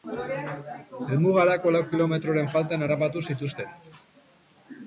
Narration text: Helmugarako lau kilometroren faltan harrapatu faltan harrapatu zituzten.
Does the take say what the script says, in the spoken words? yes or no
no